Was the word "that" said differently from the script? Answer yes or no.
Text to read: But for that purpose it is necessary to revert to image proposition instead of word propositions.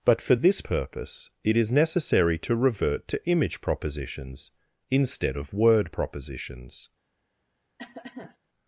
yes